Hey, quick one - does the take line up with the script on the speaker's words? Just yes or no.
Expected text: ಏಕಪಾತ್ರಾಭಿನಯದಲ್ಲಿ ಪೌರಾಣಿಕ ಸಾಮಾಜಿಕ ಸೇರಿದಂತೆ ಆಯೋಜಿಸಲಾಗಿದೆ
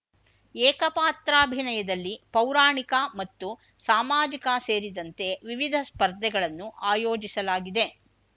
no